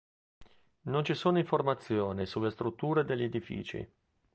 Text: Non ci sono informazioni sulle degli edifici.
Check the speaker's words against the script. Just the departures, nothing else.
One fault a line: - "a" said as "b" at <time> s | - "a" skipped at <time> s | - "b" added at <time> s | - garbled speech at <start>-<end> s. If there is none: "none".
- "strutture" added at 2.5 s